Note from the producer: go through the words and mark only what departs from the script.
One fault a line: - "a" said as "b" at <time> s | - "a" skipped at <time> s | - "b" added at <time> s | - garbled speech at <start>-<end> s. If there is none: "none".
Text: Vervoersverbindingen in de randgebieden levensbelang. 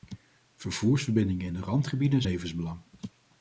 none